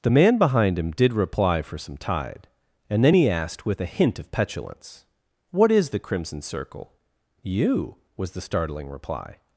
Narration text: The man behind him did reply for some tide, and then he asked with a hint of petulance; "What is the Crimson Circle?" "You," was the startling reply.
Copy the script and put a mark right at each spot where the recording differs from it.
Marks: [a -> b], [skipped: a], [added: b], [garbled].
The man behind him did reply for some tide, and then he asked with a hint of petulance; "What is the Crimson Circle?" "You," was the startling reply.